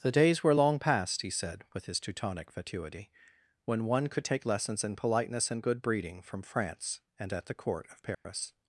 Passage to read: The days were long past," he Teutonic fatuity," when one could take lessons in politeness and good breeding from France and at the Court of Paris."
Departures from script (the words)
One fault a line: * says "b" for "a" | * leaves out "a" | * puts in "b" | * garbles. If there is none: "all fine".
* puts in "said with his"